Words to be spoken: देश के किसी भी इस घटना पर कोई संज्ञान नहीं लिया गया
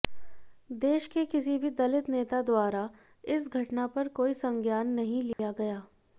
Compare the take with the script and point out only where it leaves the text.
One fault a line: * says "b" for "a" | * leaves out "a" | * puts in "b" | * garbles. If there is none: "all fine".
* puts in "दलित नेता द्वारा"